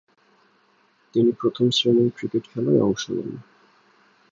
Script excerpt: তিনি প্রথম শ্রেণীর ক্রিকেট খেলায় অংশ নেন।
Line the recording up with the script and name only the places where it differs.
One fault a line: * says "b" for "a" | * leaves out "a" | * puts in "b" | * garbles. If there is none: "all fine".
all fine